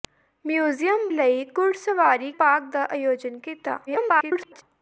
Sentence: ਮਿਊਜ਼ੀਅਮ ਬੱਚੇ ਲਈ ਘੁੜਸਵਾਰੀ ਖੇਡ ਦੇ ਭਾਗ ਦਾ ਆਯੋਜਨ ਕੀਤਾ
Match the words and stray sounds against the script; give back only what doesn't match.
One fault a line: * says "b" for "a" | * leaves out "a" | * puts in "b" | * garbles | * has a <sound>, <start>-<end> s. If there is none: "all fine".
* leaves out "ਬੱਚੇ"
* leaves out "ਖੇਡ ਦੇ"
* garbles